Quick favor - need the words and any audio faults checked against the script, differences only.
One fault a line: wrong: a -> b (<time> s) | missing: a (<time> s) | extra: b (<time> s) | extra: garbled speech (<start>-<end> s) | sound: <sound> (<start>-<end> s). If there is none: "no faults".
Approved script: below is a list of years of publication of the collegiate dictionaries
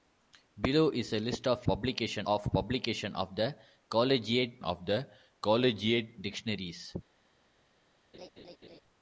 wrong: years -> publication (1.6 s)
extra: of the collegiate (4.6 s)
sound: laugh (8.1-8.8 s)